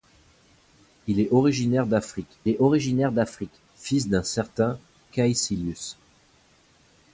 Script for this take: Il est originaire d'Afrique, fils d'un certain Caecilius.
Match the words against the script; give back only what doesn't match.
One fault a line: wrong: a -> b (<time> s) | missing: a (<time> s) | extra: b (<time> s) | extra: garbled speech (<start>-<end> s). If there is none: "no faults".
extra: est originaire d'Afrique (2.5 s)